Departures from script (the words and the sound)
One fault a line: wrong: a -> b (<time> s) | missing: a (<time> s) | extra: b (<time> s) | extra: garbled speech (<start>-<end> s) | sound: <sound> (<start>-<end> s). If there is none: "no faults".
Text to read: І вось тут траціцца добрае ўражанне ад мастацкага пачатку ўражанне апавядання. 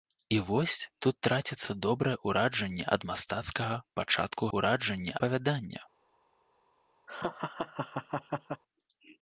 sound: laugh (7.1-8.6 s)